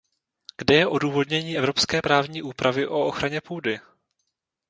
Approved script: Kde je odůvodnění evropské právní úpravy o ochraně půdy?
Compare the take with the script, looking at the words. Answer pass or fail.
pass